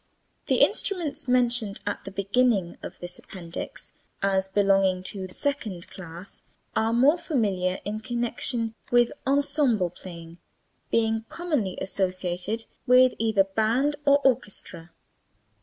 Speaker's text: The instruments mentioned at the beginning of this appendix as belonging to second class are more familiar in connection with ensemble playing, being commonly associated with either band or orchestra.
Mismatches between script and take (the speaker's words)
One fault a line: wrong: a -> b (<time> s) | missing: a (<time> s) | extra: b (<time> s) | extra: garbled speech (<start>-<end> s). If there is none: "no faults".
no faults